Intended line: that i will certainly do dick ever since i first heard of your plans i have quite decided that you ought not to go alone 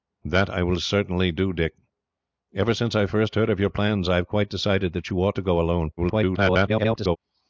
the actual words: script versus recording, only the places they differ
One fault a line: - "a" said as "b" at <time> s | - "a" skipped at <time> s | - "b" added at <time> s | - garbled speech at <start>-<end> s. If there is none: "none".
- "not" skipped at 5.4 s
- garbled speech at 6.0-7.2 s